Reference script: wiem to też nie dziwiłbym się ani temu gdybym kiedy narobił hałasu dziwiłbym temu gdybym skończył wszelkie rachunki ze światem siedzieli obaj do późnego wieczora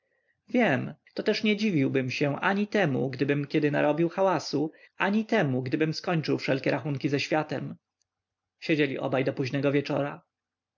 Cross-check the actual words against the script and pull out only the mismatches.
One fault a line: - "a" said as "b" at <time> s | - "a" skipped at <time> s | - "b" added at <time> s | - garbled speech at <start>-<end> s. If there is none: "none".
- "dziwiłbym" said as "ani" at 5.0 s